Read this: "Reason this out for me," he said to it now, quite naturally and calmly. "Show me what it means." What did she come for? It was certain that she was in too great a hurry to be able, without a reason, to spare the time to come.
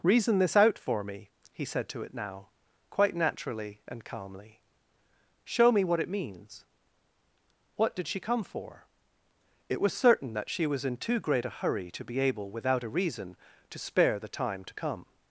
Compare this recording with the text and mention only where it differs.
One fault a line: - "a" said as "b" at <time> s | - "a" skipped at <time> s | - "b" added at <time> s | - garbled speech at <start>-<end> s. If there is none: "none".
none